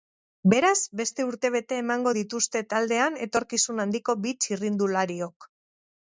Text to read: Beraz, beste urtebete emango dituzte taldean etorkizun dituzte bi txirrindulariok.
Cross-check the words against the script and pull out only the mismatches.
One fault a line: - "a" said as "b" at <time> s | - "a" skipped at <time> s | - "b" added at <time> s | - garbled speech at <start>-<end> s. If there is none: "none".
- "dituzte" said as "handiko" at 3.8 s